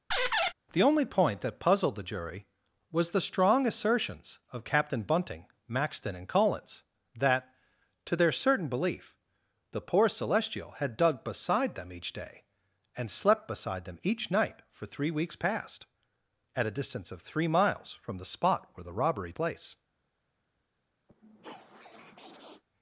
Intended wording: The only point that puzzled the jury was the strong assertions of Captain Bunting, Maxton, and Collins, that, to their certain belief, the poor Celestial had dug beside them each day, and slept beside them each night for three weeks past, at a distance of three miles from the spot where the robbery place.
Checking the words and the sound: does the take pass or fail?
fail